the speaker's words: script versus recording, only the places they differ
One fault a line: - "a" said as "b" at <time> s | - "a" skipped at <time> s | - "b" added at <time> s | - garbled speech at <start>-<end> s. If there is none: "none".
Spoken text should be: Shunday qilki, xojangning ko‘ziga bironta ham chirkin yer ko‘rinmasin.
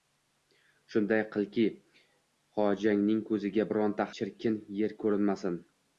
- "ham" skipped at 4.1 s